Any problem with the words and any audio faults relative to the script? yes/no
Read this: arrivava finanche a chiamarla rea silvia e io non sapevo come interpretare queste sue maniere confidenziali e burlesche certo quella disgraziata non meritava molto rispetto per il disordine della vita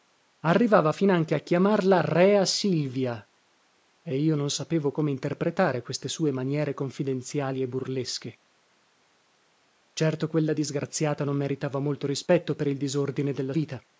no